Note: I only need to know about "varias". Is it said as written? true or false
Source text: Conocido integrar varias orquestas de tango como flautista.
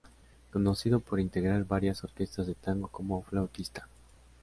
true